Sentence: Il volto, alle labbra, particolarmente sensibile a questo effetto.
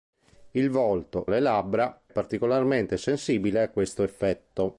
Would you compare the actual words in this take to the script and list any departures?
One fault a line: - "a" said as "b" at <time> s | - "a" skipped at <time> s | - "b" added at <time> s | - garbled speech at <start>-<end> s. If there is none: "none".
none